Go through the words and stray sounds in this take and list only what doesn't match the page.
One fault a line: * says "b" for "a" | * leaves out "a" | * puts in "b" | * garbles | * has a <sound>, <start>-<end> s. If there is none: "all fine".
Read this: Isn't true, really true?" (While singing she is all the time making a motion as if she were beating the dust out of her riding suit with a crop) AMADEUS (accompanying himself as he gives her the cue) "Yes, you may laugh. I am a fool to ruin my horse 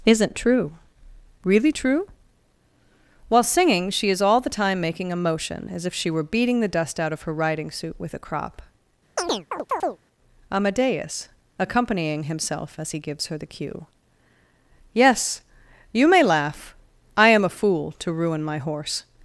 * has a chirp, 9.2-10.0 s